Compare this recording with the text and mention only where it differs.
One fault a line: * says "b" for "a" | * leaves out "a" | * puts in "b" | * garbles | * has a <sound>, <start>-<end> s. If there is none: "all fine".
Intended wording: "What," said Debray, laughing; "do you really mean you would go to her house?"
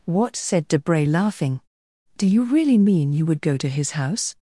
* says "his" for "her"